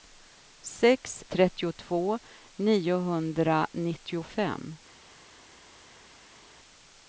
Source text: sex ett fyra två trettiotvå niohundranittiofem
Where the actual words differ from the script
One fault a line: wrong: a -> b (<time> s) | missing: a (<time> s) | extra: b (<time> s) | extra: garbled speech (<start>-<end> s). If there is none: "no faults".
missing: ett fyra två (1.2 s)